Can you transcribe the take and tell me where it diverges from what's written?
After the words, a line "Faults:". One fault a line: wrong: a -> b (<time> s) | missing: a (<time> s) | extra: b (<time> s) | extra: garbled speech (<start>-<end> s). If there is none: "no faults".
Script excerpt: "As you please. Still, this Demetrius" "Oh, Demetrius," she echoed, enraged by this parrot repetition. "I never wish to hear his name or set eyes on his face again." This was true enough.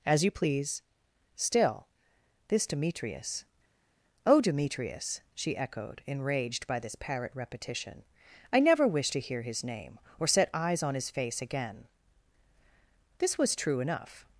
"As you please. Still, this Demetrius" "Oh, Demetrius," she echoed, enraged by this parrot repetition. "I never wish to hear his name or set eyes on his face again." This was true enough.
Faults:
no faults